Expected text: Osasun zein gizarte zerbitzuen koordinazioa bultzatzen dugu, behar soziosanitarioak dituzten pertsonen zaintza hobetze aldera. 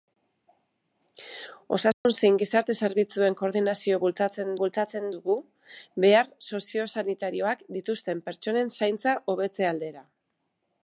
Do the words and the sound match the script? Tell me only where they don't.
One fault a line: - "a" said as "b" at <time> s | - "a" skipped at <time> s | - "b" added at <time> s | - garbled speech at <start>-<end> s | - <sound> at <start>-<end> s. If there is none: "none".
- dropout at 1.9-2.1 s
- "bultzatzen" added at 4.6 s